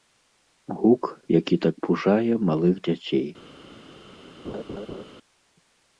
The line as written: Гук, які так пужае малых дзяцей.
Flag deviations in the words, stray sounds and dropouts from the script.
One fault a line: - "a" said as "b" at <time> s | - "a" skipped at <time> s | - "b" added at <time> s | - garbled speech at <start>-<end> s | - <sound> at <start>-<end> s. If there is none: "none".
- laugh at 4.4-5.0 s